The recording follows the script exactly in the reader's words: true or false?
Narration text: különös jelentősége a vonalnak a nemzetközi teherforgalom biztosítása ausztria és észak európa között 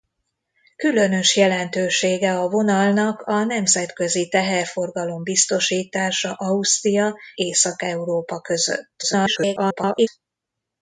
false